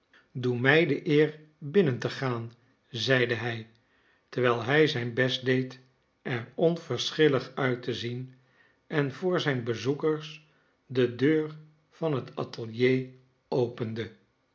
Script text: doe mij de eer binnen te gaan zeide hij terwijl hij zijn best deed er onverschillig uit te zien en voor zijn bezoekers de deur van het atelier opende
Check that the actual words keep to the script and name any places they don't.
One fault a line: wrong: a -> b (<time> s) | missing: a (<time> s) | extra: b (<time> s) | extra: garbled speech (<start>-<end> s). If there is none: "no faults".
no faults